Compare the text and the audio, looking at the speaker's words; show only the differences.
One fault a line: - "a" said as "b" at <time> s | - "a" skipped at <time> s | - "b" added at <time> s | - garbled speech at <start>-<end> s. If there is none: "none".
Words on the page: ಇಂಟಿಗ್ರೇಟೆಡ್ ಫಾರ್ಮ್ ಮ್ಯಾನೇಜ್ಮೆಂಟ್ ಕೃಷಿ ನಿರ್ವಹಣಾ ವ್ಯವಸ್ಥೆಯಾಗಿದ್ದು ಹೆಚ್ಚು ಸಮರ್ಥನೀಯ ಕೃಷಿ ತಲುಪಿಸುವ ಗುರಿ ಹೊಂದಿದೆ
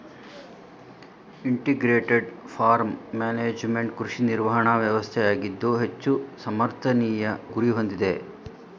- "ಕೃಷಿ ತಲುಪಿಸುವ" skipped at 7.3 s